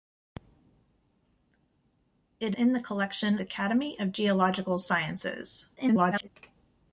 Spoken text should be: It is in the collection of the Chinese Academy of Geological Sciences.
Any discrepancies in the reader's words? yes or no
yes